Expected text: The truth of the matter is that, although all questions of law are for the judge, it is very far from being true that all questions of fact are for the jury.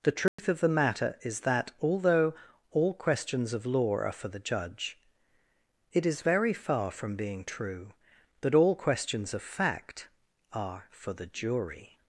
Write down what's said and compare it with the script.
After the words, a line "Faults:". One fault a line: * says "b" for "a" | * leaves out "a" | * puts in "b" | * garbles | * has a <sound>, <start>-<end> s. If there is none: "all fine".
The truth of the matter is that, although all questions of law are for the judge, it is very far from being true that all questions of fact are for the jury.
Faults:
* has a dropout, 0.3-0.4 s